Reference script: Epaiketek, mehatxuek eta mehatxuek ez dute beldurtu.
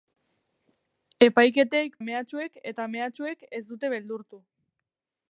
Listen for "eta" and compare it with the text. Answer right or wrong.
right